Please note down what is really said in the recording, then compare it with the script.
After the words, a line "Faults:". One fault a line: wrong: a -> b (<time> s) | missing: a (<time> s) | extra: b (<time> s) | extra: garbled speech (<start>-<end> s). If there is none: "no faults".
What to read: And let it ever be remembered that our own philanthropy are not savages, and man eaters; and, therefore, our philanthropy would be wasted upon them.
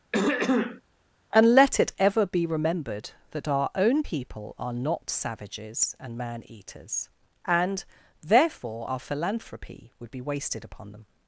And let it ever be remembered that our own people are not savages, and man eaters; and, therefore, our philanthropy would be wasted upon them.
Faults:
wrong: philanthropy -> people (4.0 s)